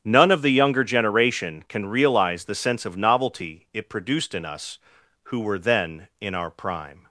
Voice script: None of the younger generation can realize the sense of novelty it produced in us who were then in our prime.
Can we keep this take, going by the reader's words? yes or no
yes